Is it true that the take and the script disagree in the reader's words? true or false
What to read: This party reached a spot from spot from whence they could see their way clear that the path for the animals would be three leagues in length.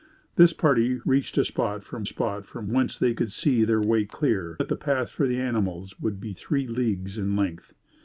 false